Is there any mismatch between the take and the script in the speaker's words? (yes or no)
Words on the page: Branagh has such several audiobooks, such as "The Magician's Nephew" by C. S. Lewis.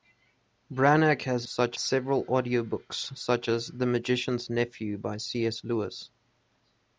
no